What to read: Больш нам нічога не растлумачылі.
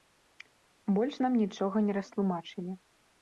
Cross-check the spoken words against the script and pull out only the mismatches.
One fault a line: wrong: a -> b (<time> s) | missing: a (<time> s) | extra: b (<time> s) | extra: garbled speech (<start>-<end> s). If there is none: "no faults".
no faults